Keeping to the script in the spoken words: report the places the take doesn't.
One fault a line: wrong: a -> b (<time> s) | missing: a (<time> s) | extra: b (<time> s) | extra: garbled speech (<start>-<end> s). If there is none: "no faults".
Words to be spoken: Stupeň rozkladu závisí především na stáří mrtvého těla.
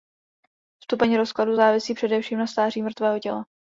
no faults